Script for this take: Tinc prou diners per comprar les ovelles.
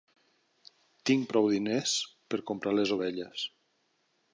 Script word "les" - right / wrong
right